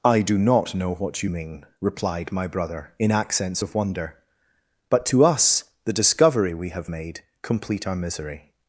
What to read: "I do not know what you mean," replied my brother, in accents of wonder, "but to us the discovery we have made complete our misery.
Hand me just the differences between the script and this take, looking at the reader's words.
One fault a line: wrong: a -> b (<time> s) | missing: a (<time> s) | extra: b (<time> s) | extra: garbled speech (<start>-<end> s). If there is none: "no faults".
no faults